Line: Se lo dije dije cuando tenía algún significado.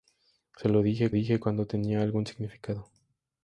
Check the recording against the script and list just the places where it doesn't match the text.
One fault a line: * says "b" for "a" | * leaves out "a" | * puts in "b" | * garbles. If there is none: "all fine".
all fine